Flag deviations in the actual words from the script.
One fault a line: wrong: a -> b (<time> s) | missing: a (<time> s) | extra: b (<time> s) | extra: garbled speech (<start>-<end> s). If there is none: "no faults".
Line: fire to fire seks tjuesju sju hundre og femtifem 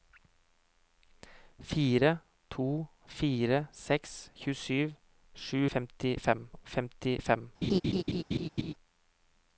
wrong: hundre -> femtifem (5.7 s)